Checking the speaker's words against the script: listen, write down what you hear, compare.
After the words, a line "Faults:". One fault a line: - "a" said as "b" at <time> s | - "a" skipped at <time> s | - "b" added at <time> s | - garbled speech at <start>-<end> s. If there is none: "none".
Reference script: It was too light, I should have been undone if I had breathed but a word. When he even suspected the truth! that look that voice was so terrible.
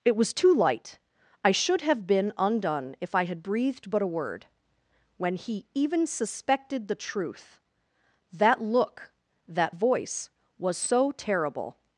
It was too light, I should have been undone if I had breathed but a word. When he even suspected the truth! that look that voice was so terrible.
Faults:
none